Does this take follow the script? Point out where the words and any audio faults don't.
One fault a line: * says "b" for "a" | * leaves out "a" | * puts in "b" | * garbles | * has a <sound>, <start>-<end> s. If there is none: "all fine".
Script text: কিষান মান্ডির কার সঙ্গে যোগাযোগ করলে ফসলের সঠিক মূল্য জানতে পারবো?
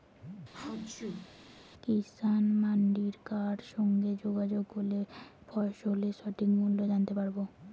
* has a sneeze, 0.5-1.3 s